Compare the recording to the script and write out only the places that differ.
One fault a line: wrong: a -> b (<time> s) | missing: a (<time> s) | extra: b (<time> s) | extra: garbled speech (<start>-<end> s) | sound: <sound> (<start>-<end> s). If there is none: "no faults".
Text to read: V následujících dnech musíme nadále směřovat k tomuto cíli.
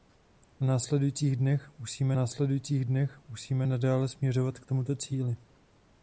extra: následujících dnech musíme (2.1 s)